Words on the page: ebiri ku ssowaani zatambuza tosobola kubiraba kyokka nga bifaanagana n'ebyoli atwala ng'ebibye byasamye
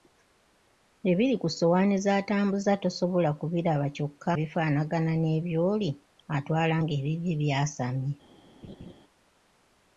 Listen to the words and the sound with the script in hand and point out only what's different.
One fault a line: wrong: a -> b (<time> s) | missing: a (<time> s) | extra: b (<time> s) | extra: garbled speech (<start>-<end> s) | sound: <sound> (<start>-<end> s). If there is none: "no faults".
missing: nga (4.3 s)
sound: laugh (8.6-8.9 s)